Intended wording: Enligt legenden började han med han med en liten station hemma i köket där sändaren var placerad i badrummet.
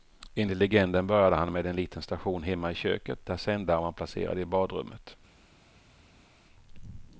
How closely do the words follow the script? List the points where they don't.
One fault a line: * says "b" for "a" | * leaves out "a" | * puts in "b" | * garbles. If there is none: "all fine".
* leaves out "han med"